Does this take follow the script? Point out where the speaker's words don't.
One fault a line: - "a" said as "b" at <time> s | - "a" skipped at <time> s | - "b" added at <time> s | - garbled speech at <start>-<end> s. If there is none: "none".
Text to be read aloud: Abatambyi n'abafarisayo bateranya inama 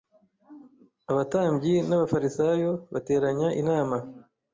none